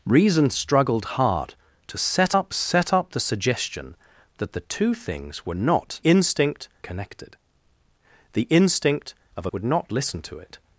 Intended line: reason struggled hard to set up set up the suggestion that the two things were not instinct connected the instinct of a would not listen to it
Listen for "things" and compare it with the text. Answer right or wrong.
right